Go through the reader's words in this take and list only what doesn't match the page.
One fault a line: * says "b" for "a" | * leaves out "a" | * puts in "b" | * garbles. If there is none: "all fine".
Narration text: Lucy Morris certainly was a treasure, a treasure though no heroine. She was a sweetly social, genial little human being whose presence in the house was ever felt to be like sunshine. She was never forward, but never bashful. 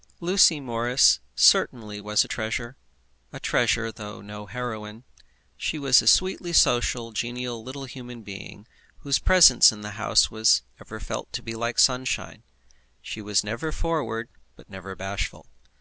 all fine